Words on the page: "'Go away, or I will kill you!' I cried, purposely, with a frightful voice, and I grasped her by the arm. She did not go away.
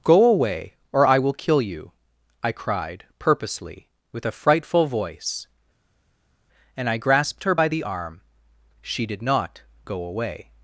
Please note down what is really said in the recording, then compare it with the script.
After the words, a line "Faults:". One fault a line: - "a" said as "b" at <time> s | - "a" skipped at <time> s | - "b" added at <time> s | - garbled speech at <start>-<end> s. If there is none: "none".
"'Go away, or I will kill you!' I cried, purposely, with a frightful voice, and I grasped her by the arm. She did not go away.
Faults:
none